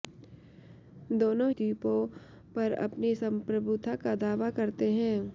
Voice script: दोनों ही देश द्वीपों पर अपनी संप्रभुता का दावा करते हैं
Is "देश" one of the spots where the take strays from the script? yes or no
yes